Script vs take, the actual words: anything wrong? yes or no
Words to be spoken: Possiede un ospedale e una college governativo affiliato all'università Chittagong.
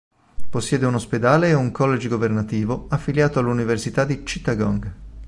yes